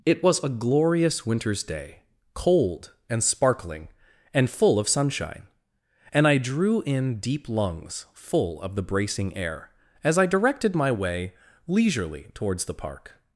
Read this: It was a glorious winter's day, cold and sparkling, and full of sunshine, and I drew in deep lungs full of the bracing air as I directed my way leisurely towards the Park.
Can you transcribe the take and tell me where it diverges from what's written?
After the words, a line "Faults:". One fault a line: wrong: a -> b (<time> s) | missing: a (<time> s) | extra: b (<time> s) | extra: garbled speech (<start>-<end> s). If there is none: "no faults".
It was a glorious winter's day, cold and sparkling, and full of sunshine, and I drew in deep lungs full of the bracing air as I directed my way leisurely towards the Park.
Faults:
no faults